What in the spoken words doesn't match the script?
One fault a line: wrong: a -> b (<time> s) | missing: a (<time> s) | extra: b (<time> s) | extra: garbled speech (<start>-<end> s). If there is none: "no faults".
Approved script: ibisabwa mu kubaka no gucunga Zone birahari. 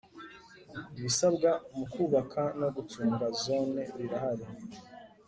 no faults